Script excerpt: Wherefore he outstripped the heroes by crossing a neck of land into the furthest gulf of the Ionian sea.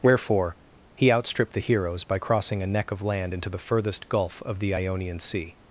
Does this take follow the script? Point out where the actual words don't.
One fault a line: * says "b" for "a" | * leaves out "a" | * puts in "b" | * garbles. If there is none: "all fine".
all fine